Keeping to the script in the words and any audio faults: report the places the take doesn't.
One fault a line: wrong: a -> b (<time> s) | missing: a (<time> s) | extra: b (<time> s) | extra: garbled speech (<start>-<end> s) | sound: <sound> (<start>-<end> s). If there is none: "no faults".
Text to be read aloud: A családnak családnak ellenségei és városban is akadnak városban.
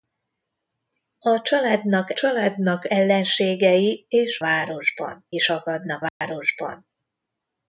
sound: dropout (6.1-6.2 s)